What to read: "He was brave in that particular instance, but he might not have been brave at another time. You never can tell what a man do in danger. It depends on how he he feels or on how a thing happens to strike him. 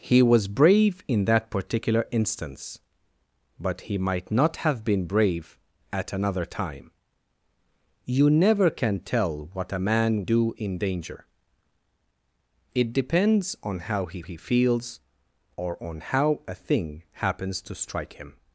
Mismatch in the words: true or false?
false